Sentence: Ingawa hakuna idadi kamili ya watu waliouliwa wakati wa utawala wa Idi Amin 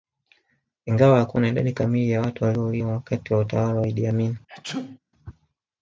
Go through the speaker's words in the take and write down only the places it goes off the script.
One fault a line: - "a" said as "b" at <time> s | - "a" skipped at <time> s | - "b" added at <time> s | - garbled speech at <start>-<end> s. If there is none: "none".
none